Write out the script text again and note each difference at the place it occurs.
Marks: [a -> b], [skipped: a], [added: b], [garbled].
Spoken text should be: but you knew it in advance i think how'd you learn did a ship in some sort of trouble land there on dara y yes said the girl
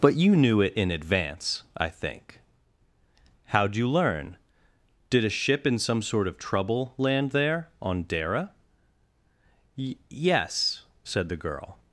but you knew it in advance i think how'd you learn did a ship in some sort of trouble land there on dara y yes said the girl